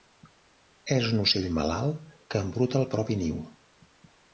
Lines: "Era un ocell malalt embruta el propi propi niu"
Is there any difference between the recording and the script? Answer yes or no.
yes